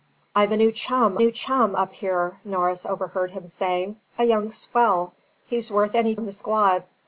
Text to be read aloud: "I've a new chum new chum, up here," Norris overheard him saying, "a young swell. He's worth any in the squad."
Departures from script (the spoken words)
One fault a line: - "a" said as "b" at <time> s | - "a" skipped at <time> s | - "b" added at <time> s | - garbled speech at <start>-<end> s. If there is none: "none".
none